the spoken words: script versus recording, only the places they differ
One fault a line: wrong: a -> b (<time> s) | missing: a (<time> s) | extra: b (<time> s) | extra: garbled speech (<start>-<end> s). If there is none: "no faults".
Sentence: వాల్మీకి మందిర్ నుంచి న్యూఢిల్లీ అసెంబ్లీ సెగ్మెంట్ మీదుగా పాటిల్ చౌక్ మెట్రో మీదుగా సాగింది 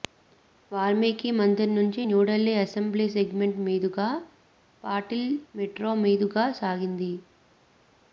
missing: చౌక్ (5.2 s)